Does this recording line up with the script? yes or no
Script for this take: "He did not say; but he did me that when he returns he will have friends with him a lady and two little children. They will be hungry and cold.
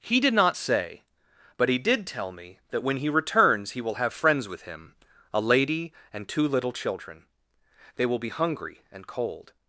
no